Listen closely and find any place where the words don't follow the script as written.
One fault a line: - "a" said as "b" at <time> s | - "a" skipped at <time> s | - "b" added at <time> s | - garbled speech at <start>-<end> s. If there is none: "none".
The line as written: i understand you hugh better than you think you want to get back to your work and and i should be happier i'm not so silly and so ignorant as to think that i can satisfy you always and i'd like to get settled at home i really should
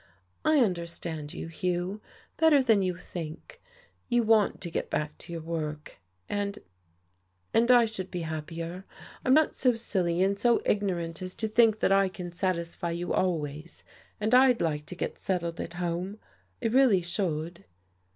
none